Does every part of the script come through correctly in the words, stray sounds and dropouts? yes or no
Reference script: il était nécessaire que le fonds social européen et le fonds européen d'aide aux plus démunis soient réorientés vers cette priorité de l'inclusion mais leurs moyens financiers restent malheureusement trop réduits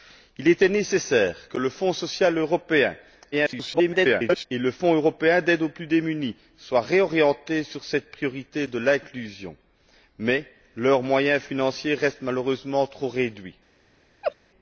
no